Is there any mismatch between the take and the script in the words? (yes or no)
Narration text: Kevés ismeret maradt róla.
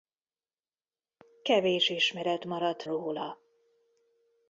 no